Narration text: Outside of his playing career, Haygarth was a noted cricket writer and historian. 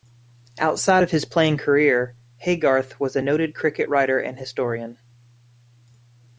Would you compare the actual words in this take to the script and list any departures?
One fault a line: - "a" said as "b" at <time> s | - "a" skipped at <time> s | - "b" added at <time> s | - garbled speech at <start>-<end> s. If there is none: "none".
none